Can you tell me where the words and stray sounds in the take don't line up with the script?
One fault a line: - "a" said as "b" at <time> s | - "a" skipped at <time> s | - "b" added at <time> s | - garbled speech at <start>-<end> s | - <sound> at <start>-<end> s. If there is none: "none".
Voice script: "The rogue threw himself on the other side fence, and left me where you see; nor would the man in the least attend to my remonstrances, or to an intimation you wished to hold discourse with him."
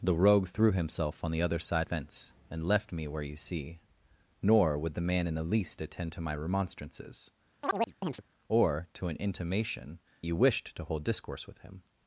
- chirp at 7.6-8.2 s